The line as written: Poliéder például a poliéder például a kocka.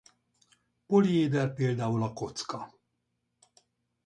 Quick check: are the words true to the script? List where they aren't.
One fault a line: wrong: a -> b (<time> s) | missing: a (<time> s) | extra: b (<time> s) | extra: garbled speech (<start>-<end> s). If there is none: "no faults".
missing: poliéder például a (2.1 s)